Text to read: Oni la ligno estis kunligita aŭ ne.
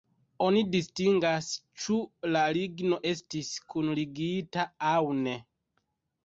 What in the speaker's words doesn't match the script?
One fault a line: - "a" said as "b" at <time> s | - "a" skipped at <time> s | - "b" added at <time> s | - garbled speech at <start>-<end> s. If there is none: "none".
- "distingas ĉu" added at 0.8 s